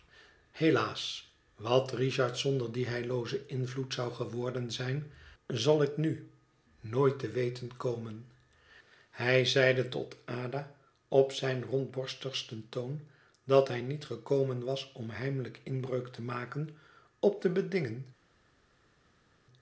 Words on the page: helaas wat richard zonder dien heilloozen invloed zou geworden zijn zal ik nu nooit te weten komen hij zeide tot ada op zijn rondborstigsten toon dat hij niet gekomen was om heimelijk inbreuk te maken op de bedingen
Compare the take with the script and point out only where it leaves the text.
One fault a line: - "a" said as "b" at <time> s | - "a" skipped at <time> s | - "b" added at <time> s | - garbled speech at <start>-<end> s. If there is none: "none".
none